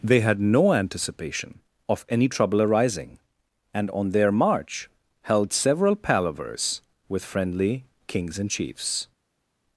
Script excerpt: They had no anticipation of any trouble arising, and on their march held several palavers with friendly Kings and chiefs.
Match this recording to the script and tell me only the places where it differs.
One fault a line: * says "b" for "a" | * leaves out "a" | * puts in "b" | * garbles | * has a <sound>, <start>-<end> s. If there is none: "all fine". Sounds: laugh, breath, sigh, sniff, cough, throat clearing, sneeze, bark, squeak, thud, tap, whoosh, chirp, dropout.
all fine